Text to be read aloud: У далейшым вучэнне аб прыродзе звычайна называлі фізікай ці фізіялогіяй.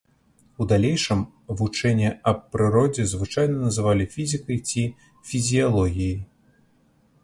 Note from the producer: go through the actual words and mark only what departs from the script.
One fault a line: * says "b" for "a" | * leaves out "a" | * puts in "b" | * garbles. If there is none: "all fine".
all fine